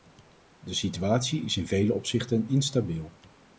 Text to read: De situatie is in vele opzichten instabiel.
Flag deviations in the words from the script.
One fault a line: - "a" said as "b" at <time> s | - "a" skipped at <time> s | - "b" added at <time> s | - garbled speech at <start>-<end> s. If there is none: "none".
none